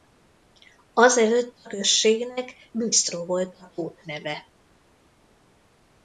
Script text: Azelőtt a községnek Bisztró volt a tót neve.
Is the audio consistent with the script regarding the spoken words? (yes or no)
yes